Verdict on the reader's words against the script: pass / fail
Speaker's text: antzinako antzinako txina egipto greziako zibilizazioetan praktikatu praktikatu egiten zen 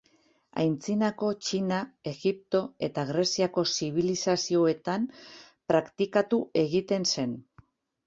fail